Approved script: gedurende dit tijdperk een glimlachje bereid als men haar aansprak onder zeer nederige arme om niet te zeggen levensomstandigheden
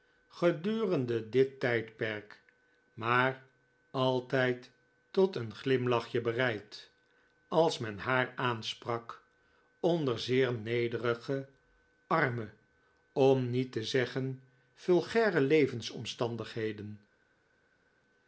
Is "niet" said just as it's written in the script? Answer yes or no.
yes